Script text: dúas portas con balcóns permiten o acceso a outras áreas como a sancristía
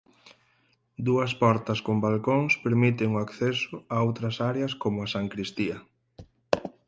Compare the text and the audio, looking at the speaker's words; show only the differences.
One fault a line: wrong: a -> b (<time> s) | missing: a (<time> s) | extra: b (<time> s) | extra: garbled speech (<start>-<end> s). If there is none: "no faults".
no faults